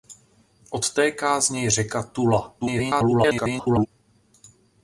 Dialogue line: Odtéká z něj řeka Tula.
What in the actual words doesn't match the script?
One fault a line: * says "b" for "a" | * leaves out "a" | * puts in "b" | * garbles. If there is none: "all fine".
* garbles